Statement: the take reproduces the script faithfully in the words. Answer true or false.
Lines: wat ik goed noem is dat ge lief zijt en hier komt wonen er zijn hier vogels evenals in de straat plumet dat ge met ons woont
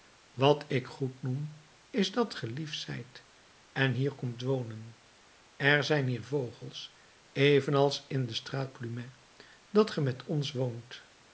true